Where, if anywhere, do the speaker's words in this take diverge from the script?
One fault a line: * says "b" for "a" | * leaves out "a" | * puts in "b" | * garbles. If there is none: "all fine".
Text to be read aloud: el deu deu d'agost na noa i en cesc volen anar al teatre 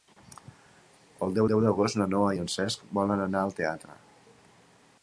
all fine